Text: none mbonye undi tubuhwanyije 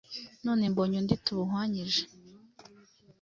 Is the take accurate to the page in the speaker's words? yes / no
yes